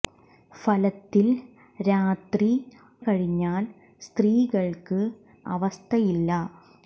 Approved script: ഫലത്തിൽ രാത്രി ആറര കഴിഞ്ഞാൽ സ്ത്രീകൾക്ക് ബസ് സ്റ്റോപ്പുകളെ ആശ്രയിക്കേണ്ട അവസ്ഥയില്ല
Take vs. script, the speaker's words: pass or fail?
fail